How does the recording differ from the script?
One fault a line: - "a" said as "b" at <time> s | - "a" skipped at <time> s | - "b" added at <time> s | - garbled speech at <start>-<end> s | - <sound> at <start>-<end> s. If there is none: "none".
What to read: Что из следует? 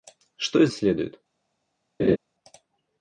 - laugh at 2.0-2.2 s